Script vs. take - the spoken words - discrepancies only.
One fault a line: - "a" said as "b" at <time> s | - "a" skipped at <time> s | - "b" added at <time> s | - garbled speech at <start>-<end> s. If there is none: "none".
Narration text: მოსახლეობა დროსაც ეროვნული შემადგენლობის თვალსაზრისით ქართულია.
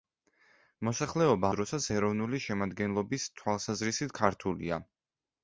none